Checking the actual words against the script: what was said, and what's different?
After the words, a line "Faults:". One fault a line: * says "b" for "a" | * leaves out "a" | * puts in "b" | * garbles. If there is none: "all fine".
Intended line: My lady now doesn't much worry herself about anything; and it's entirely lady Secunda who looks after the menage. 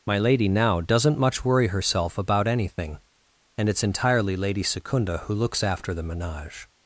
My lady now doesn't much worry herself about anything; and it's entirely lady Secunda who looks after the menage.
Faults:
all fine